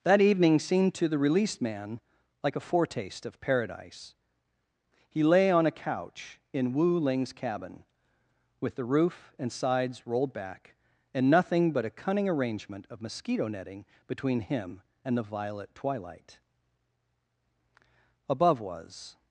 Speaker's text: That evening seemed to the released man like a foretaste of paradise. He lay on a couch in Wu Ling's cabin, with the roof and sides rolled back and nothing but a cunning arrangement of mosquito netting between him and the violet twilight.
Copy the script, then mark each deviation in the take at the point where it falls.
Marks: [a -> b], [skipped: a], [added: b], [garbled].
That evening seemed to the released man like a foretaste of paradise. He lay on a couch in Wu Ling's cabin, with the roof and sides rolled back and nothing but a cunning arrangement of mosquito netting between him and the violet twilight. [added: Above was]